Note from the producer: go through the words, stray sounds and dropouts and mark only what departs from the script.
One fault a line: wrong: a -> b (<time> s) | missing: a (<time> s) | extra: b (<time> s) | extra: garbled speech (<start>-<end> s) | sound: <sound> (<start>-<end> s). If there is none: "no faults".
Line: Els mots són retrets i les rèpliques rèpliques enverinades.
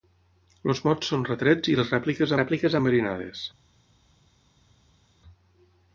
no faults